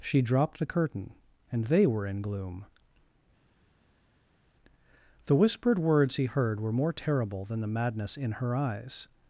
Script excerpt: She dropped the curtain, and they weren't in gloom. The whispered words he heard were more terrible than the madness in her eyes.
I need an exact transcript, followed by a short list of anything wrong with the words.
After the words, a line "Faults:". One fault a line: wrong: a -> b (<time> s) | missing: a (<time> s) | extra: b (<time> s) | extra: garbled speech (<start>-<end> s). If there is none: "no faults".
She dropped the curtain, and they were in gloom. The whispered words he heard were more terrible than the madness in her eyes.
Faults:
wrong: weren't -> were (1.8 s)